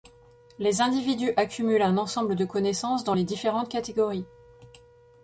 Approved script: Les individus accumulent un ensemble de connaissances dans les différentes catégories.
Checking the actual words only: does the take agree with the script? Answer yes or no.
yes